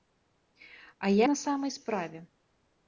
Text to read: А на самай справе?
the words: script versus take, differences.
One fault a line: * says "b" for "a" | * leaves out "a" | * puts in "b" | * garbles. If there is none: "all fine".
all fine